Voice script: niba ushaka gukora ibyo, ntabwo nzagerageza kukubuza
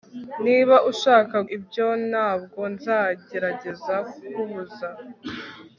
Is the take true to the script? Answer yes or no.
no